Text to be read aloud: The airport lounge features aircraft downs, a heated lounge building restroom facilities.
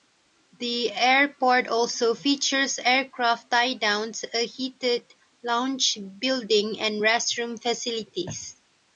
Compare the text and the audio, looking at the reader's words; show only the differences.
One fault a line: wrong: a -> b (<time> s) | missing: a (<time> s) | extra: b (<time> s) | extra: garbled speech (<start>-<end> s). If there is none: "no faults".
wrong: lounge -> also (1.7 s)
extra: tie (3.5 s)
extra: and (6.8 s)